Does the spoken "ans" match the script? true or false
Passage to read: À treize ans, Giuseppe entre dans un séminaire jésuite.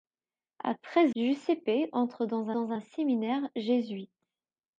false